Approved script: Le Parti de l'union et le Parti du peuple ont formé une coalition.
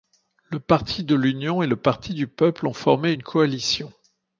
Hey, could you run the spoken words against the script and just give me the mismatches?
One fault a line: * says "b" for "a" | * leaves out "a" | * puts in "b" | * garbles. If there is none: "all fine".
all fine